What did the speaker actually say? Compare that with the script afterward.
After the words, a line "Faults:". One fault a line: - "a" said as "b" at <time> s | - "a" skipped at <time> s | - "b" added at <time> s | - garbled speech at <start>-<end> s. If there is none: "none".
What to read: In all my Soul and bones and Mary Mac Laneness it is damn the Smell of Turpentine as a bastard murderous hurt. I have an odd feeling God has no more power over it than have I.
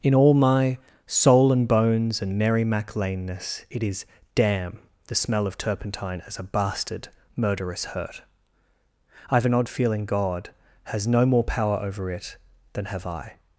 In all my Soul and bones and Mary Mac Laneness it is damn the Smell of Turpentine as a bastard murderous hurt. I have an odd feeling God has no more power over it than have I.
Faults:
none